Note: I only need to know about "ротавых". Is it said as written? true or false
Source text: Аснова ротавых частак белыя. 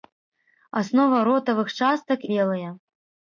true